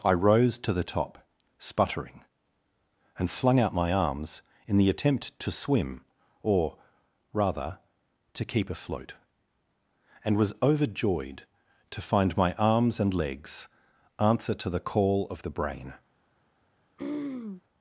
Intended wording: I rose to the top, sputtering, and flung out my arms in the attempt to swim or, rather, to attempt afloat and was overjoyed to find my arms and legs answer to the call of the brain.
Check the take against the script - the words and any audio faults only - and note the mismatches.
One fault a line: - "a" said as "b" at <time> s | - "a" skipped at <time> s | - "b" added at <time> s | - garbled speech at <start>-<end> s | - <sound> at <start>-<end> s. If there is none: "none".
- "attempt" said as "keep" at 8.4 s
- throat clearing at 17.0-17.6 s